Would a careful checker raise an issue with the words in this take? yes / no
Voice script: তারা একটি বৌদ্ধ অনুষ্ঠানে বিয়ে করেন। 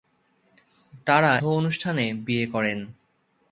yes